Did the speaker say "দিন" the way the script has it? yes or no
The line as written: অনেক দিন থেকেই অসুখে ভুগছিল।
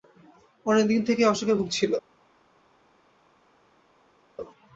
yes